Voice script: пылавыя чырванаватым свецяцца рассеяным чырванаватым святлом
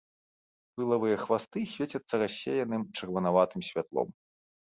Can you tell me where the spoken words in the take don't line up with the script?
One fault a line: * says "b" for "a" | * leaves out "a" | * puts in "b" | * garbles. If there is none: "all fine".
* says "хвасты" for "чырванаватым"